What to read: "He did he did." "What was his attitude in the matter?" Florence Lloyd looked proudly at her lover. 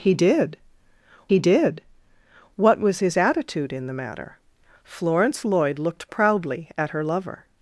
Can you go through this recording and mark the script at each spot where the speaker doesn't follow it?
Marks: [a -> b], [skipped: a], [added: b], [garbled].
"He did he did." "What was his attitude in the matter?" Florence Lloyd looked proudly at her lover.